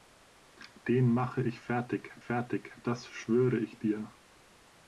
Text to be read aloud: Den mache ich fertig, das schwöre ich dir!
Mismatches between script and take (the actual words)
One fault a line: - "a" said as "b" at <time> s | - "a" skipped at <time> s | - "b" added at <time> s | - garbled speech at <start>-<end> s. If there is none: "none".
- "fertig" added at 2.2 s